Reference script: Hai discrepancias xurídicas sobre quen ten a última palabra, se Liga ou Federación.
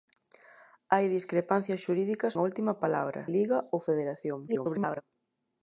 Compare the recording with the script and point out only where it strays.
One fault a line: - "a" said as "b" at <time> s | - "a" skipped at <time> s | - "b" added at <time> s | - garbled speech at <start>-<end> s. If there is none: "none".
- "sobre quen ten" skipped at 2.3 s
- "se" skipped at 3.2 s
- garbled speech at 4.5-5.0 s